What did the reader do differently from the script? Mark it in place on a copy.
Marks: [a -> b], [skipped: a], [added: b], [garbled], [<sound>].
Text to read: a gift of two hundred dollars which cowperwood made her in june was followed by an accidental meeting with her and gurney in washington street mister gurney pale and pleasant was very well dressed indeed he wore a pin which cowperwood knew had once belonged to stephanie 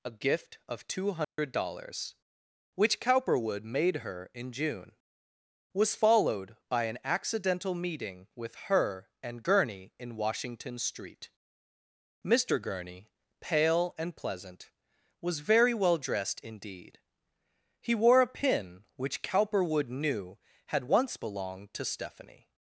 a gift of two hundred [dropout] dollars which cowperwood made her in june was followed by an accidental meeting with her and gurney in washington street mister gurney pale and pleasant was very well dressed indeed he wore a pin which cowperwood knew had once belonged to stephanie